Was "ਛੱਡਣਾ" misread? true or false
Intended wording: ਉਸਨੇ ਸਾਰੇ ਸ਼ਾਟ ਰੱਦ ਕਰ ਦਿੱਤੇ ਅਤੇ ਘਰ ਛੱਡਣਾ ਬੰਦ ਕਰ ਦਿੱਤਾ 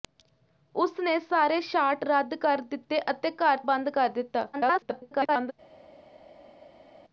true